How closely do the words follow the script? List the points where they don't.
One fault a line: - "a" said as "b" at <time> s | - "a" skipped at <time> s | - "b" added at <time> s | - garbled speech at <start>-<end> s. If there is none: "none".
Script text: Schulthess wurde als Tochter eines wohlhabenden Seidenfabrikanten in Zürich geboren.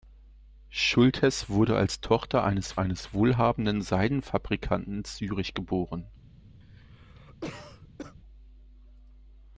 - "eines" added at 2.8 s